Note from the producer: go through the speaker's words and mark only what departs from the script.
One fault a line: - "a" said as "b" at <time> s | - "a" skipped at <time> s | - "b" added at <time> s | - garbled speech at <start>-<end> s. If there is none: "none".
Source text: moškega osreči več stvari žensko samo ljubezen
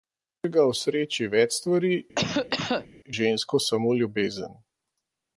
none